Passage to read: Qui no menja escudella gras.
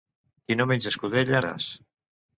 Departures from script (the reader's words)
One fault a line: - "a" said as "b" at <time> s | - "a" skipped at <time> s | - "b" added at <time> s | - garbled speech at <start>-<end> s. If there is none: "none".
none